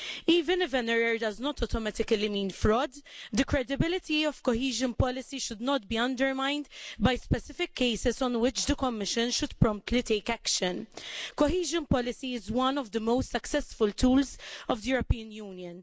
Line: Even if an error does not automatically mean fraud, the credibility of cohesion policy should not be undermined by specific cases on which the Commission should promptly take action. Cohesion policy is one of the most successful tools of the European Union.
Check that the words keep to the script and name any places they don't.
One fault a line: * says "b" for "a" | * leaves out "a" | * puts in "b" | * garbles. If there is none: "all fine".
all fine